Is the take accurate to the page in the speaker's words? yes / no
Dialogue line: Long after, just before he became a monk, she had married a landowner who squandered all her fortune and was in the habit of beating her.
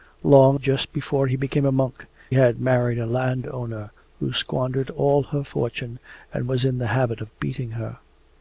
no